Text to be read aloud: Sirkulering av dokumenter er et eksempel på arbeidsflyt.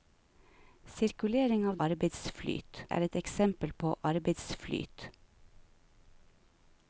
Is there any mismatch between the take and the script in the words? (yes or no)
yes